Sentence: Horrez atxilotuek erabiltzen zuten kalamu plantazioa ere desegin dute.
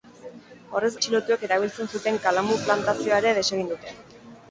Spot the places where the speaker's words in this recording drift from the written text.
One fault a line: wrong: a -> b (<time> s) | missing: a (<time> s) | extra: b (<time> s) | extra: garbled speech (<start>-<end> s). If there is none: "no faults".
no faults